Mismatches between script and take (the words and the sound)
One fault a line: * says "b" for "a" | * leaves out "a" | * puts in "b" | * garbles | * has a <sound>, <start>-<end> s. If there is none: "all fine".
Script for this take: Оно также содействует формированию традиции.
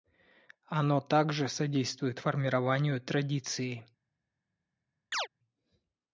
* has a chirp, 5.1-5.3 s